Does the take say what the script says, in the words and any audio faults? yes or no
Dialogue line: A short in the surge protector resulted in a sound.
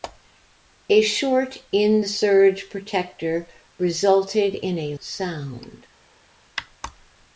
yes